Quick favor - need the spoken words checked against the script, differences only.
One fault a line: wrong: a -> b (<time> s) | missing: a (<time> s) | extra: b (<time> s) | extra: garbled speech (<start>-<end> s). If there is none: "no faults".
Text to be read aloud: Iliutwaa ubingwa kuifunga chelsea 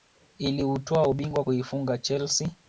no faults